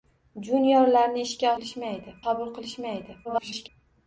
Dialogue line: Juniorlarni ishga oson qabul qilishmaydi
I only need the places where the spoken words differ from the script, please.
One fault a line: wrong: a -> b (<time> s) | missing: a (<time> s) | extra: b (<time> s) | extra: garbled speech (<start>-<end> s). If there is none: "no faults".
wrong: oson -> qilishmaydi (1.6 s)
extra: garbled speech (3.2-3.7 s)